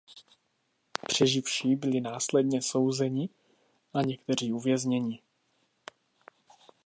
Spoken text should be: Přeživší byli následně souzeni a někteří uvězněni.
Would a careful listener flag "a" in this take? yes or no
no